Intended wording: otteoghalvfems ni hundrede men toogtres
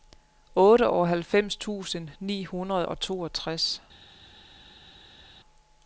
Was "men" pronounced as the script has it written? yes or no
no